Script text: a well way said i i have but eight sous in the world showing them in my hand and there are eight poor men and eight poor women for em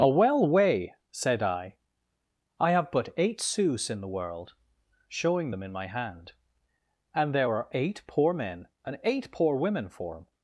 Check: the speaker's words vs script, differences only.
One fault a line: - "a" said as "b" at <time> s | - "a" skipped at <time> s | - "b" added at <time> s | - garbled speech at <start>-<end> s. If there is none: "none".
none